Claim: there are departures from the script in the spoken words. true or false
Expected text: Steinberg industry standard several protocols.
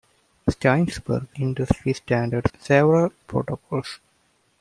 false